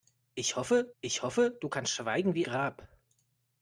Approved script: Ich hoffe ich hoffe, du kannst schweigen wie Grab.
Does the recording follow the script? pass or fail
pass